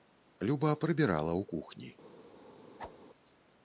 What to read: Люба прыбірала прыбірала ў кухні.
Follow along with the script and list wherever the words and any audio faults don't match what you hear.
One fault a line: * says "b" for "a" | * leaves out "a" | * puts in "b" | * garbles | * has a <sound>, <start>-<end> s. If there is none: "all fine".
* leaves out "прыбірала"
* has a whoosh, 2.8-3.0 s